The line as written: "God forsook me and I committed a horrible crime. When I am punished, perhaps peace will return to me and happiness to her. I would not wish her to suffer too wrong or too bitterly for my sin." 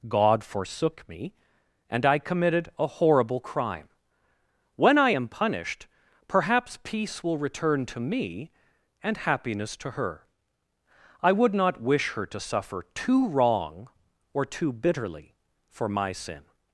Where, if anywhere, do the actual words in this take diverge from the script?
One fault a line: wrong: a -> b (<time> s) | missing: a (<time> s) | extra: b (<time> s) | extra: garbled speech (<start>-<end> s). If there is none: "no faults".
no faults